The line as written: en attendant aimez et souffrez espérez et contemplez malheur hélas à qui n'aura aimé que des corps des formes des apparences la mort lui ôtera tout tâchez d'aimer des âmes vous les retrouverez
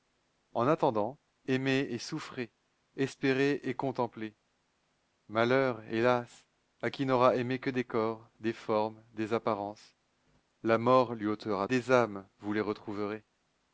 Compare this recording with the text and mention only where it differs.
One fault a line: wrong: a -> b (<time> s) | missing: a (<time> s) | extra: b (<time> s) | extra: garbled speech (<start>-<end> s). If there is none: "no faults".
missing: tout tâchez d'aimer (11.7 s)